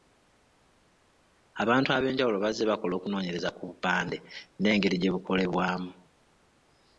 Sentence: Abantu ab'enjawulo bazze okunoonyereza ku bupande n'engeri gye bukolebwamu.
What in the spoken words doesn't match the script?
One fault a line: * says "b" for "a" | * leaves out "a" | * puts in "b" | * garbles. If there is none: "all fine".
* puts in "bakola"